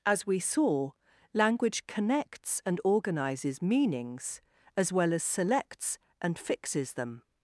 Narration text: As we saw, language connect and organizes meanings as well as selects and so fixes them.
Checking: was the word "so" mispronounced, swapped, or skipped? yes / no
yes